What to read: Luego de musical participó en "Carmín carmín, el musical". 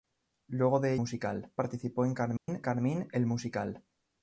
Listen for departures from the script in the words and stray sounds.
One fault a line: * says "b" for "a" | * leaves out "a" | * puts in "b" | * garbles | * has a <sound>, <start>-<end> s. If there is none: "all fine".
* has a dropout, 2.4-2.5 s